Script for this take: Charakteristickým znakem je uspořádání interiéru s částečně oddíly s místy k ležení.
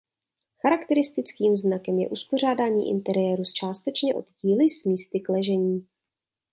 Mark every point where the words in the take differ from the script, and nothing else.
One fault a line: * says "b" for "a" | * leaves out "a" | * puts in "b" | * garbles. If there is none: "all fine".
all fine